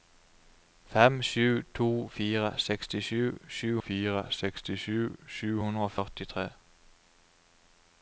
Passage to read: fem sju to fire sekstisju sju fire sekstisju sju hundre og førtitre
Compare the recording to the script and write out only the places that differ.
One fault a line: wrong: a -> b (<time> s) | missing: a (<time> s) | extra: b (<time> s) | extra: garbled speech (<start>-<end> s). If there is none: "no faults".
no faults